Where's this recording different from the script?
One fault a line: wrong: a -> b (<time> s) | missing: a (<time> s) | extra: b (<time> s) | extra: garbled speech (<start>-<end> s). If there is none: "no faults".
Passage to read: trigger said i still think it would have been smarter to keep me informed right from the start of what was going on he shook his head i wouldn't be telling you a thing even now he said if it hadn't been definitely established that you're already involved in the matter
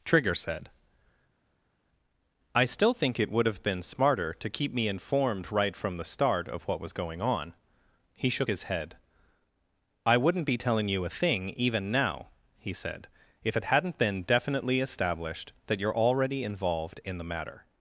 no faults